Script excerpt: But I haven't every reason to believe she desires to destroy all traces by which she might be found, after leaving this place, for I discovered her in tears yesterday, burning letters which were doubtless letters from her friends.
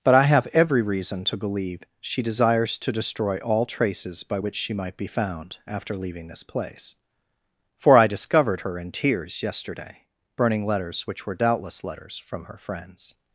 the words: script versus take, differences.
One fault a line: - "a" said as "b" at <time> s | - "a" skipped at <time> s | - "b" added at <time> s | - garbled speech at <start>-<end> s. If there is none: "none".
- "haven't" said as "have" at 0.2 s